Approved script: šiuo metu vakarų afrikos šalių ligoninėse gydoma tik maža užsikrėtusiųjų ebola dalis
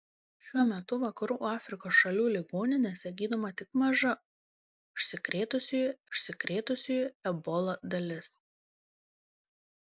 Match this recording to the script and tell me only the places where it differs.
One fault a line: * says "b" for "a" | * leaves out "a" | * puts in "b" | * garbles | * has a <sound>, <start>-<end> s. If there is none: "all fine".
* puts in "užsikrėtusiųjų"